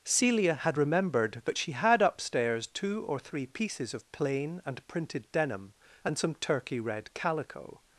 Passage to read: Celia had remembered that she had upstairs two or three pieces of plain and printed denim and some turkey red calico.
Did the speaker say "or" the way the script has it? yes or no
yes